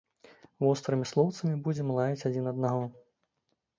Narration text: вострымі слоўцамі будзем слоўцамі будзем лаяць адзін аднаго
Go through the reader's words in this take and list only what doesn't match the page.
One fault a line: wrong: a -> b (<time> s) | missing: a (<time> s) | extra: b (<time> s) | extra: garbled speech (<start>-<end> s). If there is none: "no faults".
missing: слоўцамі будзем (1.9 s)